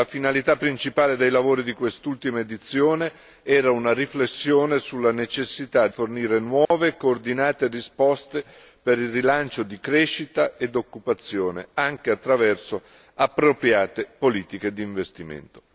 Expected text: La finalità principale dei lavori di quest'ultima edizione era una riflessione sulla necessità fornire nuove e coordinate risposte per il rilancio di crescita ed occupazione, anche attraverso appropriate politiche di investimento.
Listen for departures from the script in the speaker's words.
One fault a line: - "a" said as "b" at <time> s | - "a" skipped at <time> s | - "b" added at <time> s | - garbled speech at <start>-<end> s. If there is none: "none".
none